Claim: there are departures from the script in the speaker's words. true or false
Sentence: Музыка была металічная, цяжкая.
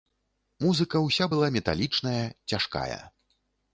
true